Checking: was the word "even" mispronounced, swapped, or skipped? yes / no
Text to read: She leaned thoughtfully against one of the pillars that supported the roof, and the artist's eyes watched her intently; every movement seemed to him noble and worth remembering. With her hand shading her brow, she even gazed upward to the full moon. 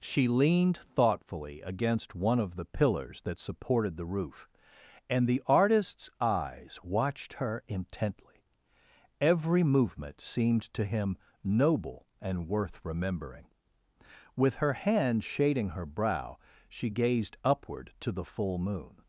yes